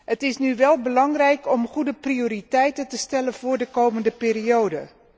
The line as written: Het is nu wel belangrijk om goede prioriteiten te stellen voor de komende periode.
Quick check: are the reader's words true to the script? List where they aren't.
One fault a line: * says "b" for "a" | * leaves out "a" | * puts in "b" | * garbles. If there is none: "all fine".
all fine